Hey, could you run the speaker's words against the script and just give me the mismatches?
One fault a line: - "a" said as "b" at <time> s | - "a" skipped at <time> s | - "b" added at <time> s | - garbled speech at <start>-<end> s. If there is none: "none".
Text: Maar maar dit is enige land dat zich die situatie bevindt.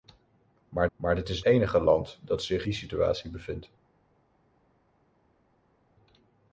none